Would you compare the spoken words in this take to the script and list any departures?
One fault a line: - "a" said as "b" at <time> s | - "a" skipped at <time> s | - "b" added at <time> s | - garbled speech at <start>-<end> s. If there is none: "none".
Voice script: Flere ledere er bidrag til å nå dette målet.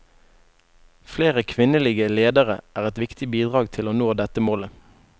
- "kvinnelige" added at 1.5 s
- "et viktig" added at 2.9 s